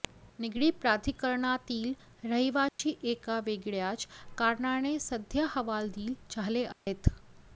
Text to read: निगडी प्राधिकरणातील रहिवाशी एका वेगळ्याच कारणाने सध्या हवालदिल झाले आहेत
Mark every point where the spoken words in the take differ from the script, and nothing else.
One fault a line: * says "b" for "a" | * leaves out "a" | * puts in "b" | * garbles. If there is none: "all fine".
all fine